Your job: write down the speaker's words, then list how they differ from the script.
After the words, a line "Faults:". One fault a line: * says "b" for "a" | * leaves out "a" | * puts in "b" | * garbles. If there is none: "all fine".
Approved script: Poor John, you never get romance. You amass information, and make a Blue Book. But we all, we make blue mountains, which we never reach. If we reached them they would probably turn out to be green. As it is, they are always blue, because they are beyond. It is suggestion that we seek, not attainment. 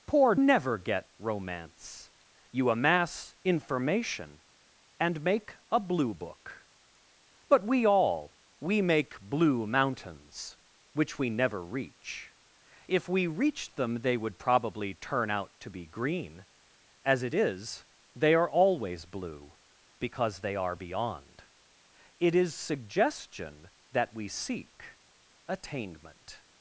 Poor Never get romance. You amass information, and make a Blue Book. But we all, we make blue mountains, which we never reach. If we reached them they would probably turn out to be green. As it is, they are always blue, because they are beyond. It is suggestion that we seek, attainment.
Faults:
* leaves out "John you"
* leaves out "not"